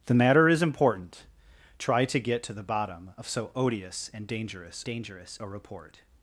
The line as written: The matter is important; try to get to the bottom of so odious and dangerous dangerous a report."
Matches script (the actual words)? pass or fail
pass